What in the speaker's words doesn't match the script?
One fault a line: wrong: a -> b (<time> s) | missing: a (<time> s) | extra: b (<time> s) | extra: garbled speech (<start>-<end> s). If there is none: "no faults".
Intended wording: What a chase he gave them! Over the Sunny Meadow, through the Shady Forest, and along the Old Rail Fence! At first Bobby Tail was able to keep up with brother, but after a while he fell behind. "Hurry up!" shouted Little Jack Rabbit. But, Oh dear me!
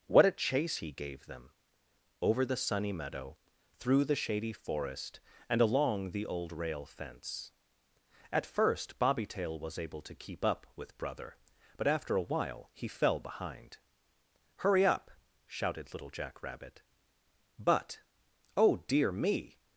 no faults